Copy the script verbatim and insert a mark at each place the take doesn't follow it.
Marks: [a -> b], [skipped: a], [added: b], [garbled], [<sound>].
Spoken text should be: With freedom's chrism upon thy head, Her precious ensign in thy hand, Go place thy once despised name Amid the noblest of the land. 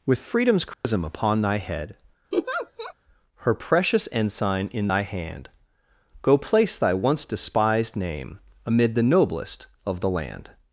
With freedom's chrism [dropout] upon thy head, [laugh] Her precious ensign in thy hand, Go place thy once despised name Amid the noblest of the land.